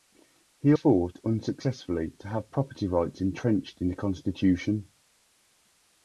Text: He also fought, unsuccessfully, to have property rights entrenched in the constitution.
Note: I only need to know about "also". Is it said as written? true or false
false